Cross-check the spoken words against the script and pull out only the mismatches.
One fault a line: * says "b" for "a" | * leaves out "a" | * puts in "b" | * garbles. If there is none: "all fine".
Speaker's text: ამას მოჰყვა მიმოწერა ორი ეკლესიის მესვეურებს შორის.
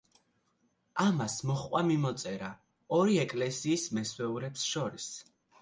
all fine